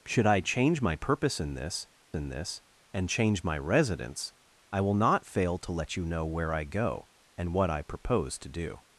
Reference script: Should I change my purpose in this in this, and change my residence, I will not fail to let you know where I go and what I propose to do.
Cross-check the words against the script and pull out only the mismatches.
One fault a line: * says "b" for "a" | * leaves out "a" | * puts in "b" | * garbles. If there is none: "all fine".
all fine